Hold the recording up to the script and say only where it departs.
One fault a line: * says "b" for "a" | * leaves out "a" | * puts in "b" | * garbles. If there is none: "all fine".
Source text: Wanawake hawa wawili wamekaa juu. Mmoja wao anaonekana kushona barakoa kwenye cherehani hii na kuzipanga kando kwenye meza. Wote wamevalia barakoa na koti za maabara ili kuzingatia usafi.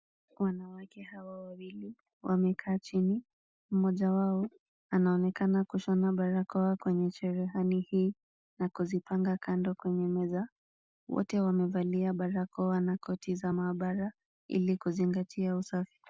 * says "chini" for "juu"